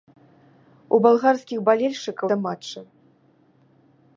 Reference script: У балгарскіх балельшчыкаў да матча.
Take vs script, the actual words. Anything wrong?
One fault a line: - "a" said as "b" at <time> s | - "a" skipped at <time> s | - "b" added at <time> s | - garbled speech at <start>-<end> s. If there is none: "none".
none